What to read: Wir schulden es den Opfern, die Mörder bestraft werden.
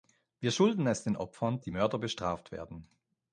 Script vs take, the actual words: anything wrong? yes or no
no